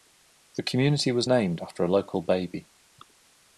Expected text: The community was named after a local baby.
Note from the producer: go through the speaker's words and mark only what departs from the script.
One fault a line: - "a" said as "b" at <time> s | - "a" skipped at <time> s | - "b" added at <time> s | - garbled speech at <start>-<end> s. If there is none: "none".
none